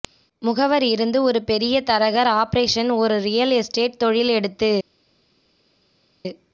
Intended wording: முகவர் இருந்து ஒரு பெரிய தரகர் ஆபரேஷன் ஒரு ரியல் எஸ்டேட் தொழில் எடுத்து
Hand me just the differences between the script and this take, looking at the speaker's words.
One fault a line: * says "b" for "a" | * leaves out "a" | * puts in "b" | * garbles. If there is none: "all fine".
all fine